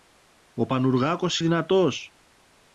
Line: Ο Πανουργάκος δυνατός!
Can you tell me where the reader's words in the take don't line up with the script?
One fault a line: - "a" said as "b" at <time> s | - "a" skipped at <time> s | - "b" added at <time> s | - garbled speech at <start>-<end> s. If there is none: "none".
none